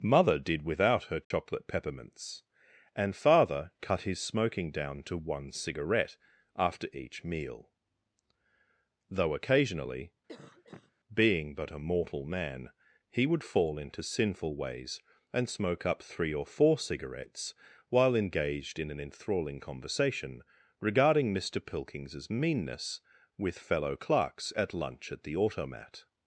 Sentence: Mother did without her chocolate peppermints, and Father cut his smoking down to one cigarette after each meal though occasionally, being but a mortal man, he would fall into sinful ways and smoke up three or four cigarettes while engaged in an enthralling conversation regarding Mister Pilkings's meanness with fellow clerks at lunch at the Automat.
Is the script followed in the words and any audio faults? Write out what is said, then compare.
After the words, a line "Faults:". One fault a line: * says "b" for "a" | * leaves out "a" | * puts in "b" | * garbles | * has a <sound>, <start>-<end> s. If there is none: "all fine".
Mother did without her chocolate peppermints, and Father cut his smoking down to one cigarette after each meal though occasionally, being but a mortal man, he would fall into sinful ways and smoke up three or four cigarettes while engaged in an enthralling conversation regarding Mister Pilkings's meanness with fellow clerks at lunch at the Automat.
Faults:
* has a dropout, 1.2-1.3 s
* has a cough, 10.3-10.9 s